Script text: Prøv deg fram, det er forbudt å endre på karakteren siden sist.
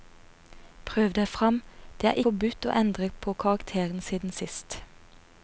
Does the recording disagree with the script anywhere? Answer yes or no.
no